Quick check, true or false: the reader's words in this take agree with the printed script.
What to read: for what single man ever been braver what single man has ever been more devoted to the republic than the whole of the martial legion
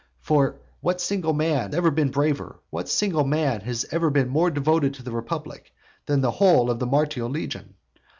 true